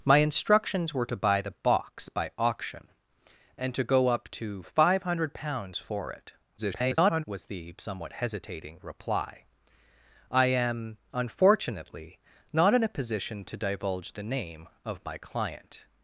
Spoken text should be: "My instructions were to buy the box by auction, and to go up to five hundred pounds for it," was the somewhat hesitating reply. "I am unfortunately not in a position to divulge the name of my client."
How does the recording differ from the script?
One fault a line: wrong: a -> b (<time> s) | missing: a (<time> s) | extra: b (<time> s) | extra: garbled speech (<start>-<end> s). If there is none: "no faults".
extra: garbled speech (6.6-7.2 s)